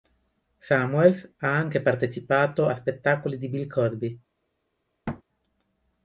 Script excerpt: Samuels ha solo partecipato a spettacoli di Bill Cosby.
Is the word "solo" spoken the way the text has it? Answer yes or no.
no